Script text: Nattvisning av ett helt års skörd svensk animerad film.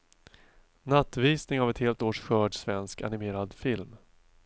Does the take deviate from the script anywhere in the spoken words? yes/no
no